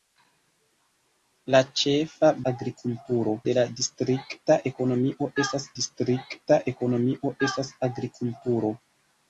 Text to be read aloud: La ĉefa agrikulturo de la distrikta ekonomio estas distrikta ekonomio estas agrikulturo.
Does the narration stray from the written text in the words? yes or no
no